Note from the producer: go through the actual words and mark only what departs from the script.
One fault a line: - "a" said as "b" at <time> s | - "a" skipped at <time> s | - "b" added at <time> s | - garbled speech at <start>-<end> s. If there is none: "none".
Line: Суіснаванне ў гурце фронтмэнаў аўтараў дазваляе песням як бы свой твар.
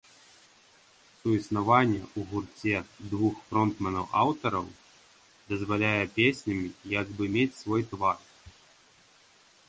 - "двух" added at 3.1 s
- "мець" added at 7.4 s